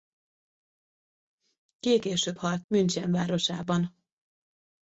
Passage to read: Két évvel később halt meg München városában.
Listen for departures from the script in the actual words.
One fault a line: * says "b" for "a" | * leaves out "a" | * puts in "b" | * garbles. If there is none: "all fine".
* leaves out "évvel"
* leaves out "meg"